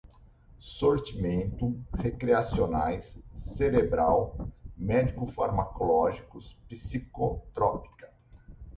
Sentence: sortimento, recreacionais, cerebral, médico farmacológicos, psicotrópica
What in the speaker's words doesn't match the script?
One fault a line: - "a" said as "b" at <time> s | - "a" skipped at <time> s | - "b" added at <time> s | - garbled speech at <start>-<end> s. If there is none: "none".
none